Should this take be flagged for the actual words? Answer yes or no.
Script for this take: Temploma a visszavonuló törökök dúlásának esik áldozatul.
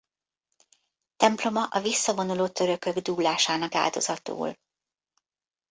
yes